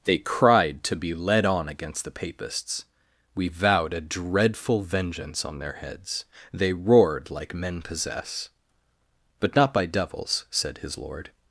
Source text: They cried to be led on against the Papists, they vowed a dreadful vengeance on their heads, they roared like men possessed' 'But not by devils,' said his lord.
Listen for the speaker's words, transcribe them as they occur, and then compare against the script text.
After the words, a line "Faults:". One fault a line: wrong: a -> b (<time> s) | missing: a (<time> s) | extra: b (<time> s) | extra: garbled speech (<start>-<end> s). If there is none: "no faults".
They cried to be led on against the Papists, we vowed a dreadful vengeance on their heads, they roared like men possess' 'But not by devils,' said his lord.
Faults:
wrong: they -> we (3.4 s)
wrong: possessed -> possess (7.8 s)